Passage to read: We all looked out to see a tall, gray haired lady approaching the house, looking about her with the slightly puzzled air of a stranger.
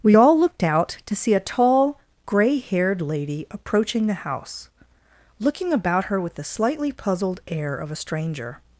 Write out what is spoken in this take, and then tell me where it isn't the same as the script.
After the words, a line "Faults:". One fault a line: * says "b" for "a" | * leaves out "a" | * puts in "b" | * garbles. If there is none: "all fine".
We all looked out to see a tall, gray haired lady approaching the house, looking about her with the slightly puzzled air of a stranger.
Faults:
all fine